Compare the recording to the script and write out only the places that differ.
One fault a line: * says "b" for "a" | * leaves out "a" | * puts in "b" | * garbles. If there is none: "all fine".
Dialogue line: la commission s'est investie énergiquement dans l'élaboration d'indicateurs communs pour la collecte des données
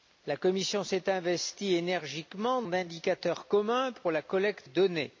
* leaves out "dans l'élaboration"
* leaves out "des"